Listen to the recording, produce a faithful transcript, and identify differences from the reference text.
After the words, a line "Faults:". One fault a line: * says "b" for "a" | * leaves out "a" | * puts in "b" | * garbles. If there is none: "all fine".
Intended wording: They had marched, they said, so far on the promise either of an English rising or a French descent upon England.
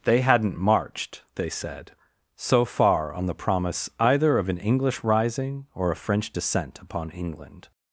They hadn't marched, they said, so far on the promise either of an English rising or a French descent upon England.
Faults:
* says "hadn't" for "had"